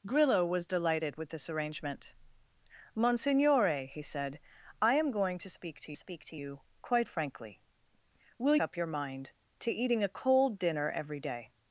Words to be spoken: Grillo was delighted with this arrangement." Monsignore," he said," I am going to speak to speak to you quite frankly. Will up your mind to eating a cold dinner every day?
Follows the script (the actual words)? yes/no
yes